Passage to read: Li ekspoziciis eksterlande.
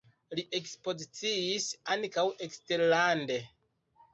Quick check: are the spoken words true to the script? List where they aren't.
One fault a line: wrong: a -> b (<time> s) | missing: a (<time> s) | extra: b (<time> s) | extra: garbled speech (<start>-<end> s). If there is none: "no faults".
extra: ankaŭ (2.0 s)